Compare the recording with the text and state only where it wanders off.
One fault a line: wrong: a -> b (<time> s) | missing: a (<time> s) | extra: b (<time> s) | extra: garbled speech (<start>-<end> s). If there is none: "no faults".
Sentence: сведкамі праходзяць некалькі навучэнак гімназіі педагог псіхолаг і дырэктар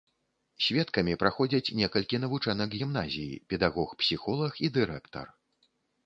no faults